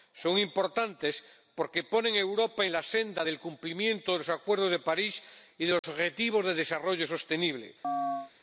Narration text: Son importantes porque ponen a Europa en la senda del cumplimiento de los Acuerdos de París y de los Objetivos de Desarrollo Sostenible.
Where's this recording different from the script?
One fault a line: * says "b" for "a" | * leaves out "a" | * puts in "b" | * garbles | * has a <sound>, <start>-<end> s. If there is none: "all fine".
* has a dropout, 5.8-5.8 s
* has a chirp, 7.8-8.3 s